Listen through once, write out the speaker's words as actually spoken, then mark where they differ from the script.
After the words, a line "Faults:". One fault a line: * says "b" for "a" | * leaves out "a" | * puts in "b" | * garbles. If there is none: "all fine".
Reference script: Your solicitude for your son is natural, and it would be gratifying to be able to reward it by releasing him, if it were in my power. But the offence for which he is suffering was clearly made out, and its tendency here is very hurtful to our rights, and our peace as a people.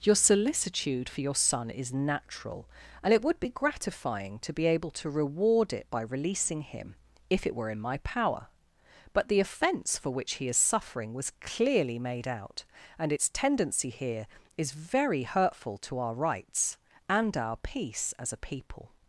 Your solicitude for your son is natural, and it would be gratifying to be able to reward it by releasing him, if it were in my power. But the offence for which he is suffering was clearly made out, and its tendency here is very hurtful to our rights, and our peace as a people.
Faults:
all fine